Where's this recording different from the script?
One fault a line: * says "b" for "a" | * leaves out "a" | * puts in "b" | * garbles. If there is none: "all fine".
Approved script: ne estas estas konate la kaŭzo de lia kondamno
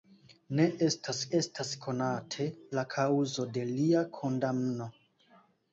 all fine